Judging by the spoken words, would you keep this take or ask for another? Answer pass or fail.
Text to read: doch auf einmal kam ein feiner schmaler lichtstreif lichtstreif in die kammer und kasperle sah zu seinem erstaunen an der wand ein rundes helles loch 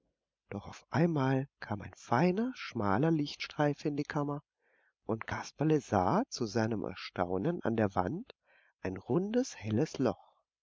fail